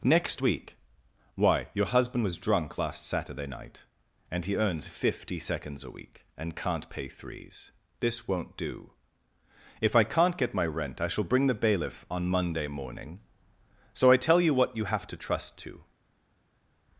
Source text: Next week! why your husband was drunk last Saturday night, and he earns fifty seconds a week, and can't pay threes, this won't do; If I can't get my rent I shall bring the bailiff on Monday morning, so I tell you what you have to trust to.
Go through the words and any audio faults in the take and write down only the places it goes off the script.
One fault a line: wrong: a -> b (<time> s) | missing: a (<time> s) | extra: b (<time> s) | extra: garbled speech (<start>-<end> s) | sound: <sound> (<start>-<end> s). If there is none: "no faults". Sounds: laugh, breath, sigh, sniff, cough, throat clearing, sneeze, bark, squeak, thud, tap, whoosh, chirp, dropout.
no faults